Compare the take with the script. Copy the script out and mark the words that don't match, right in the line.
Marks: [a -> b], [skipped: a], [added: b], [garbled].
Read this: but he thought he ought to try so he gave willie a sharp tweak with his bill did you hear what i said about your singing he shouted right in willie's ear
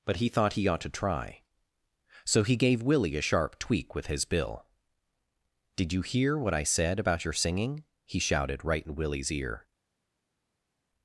but he thought he ought to try so he gave willie a sharp tweak with his bill did you hear what i said about your singing he shouted right in willie's ear